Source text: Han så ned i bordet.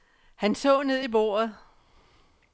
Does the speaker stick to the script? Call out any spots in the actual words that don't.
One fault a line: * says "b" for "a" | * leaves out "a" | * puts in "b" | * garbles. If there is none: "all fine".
all fine